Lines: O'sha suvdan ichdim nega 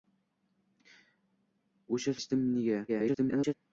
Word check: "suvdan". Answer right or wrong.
wrong